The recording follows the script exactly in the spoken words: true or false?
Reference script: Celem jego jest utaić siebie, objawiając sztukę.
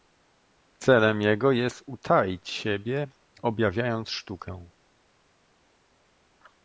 true